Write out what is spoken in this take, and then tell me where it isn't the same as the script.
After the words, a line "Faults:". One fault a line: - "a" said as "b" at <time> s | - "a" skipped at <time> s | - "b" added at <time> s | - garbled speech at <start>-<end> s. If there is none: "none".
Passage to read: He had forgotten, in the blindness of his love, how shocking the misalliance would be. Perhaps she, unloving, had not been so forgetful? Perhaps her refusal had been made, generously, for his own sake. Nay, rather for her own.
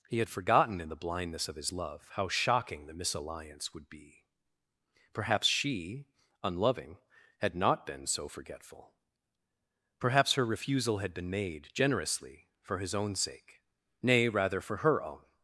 He had forgotten, in the blindness of his love, how shocking the misalliance would be. Perhaps she, unloving, had not been so forgetful? Perhaps her refusal had been made, generously, for his own sake. Nay, rather for her own.
Faults:
none